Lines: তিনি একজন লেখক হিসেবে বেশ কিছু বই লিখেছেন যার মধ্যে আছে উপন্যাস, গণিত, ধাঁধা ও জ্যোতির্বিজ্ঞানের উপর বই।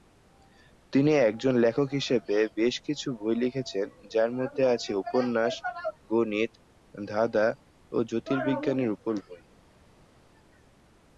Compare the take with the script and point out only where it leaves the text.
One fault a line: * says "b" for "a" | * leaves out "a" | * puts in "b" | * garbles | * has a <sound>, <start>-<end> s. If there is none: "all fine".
all fine